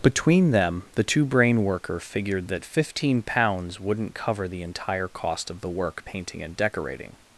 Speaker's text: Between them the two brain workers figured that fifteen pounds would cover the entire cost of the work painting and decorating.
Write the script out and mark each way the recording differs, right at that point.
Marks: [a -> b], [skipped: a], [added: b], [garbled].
Between them the two brain [workers -> worker] figured that fifteen pounds [would -> wouldn't] cover the entire cost of the work painting and decorating.